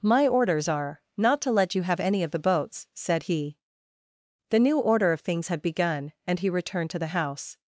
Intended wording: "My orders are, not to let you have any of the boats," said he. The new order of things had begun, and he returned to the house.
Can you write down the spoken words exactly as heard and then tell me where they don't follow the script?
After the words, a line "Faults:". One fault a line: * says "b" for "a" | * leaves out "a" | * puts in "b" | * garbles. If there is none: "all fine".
"My orders are, not to let you have any of the boats," said he. The new order of things had begun, and he returned to the house.
Faults:
all fine